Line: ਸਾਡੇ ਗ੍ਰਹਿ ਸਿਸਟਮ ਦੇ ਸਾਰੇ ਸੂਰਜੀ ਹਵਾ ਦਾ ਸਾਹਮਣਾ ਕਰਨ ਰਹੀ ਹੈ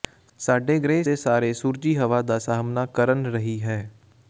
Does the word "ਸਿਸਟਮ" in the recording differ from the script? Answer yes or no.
yes